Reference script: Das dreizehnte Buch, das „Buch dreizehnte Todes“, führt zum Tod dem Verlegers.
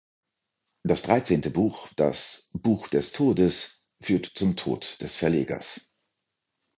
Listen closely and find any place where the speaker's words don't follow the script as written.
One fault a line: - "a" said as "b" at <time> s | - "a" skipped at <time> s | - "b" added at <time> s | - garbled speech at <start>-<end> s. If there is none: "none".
- "dreizehnte" said as "des" at 2.9 s
- "dem" said as "des" at 5.0 s